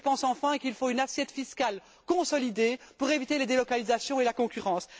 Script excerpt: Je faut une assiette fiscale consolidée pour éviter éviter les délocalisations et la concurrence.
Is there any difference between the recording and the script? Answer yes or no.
yes